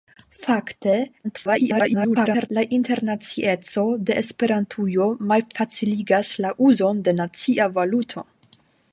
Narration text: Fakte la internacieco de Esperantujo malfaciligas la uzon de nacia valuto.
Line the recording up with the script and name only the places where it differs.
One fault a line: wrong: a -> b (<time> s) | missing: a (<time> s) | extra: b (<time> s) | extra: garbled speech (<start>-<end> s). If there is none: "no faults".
extra: garbled speech (1.2-2.5 s)